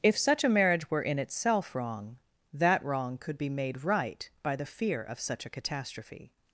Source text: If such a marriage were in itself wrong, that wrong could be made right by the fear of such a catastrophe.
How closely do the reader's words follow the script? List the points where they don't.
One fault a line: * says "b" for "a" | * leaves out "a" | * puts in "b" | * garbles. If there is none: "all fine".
all fine